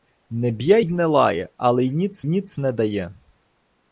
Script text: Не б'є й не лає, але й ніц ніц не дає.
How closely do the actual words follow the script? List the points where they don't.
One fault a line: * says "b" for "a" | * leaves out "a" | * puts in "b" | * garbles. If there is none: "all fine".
all fine